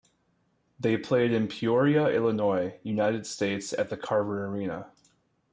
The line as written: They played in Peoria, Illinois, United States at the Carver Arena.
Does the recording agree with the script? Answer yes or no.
yes